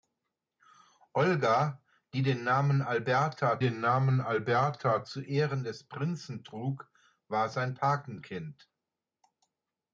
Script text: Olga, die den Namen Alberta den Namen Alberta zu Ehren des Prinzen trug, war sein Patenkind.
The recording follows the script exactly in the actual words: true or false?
true